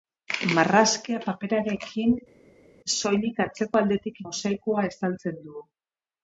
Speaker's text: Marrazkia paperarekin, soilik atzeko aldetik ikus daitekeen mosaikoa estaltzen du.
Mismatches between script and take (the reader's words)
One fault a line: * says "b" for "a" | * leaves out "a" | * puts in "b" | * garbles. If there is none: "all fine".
* leaves out "ikus daitekeen"